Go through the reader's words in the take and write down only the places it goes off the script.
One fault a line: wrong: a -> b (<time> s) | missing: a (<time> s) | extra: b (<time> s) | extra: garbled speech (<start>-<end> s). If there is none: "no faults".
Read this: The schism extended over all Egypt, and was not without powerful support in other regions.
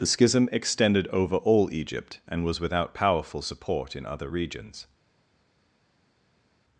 missing: not (2.6 s)